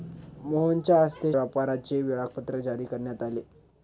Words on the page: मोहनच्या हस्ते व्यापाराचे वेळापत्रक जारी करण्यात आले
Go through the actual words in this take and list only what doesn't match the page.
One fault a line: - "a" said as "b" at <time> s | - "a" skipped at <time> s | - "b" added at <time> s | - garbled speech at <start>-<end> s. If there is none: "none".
none